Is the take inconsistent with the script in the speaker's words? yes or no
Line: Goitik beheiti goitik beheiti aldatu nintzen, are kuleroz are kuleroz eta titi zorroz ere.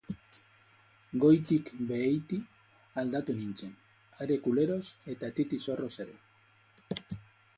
yes